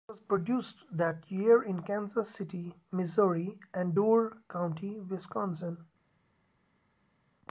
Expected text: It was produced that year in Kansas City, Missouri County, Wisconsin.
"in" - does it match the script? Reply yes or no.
yes